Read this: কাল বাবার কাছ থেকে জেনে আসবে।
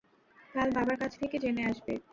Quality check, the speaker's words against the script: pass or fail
pass